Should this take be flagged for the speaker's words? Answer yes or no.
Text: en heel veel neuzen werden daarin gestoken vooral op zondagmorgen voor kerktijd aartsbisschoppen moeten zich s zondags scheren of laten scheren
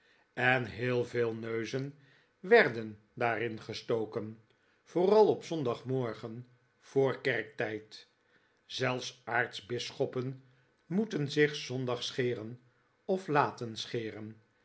yes